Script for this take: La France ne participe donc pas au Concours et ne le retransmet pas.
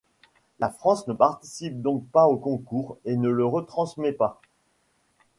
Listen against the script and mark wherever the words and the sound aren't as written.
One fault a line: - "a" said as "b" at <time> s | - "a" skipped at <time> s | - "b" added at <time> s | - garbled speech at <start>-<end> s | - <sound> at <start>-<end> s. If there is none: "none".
none